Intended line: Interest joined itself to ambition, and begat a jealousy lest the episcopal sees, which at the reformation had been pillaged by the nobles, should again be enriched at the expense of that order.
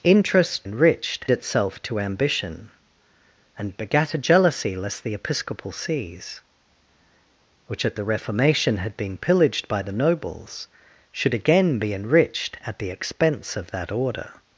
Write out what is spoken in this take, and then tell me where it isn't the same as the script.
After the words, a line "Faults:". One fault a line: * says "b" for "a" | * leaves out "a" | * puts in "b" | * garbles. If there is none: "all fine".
Interest enriched itself to ambition, and begat a jealousy lest the episcopal sees, which at the reformation had been pillaged by the nobles, should again be enriched at the expense of that order.
Faults:
* says "enriched" for "joined"